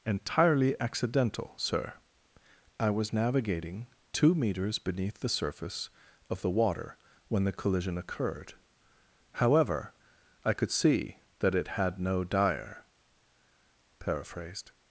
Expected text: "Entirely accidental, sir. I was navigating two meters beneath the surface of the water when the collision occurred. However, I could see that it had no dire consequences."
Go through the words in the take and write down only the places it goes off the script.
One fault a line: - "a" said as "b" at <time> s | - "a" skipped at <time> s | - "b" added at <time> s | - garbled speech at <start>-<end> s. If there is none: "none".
- "consequences" said as "paraphrased" at 14.0 s